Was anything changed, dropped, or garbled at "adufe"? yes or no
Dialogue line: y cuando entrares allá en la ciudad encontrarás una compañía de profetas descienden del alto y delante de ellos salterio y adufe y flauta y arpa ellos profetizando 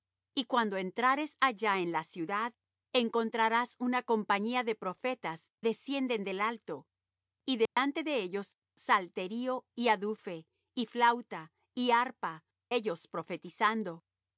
no